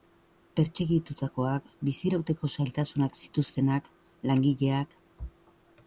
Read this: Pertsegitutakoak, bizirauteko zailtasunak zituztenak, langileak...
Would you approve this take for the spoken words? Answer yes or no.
yes